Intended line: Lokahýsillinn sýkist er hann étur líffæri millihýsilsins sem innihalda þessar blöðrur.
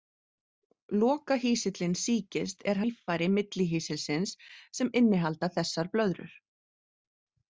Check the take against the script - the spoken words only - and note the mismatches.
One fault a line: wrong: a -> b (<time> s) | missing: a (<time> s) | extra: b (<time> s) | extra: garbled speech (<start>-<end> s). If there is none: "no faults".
missing: hann étur (2.8 s)